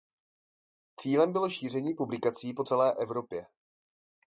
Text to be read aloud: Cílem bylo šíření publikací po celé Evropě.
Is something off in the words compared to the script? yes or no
no